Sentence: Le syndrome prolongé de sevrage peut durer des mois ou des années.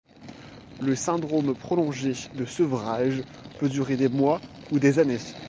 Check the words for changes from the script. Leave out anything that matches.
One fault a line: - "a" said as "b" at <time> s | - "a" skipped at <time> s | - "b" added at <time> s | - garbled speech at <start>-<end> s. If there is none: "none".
none